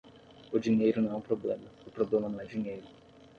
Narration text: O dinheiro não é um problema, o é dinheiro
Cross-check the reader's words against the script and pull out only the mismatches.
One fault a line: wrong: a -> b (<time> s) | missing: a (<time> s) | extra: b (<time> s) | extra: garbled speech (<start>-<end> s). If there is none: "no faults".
extra: problema não (1.9 s)